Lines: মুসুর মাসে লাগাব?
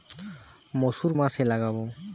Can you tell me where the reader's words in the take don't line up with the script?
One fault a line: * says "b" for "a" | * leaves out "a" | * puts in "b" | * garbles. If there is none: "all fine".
all fine